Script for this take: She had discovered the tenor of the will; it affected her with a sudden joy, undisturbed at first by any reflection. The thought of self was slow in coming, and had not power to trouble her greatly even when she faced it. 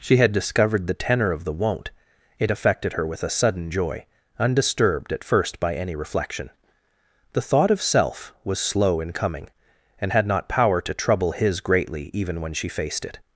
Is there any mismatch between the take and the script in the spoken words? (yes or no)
yes